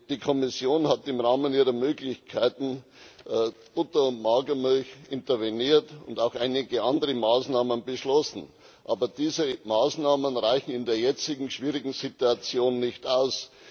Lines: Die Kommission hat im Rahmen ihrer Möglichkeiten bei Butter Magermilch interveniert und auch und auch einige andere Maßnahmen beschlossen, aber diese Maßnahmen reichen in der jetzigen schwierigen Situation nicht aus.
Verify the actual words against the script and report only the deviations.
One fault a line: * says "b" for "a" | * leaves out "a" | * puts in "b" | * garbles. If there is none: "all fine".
* puts in "und"
* leaves out "und auch"